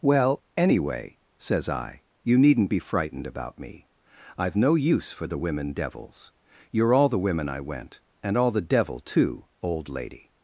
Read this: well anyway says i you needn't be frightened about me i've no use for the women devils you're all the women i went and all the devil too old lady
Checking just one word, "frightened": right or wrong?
right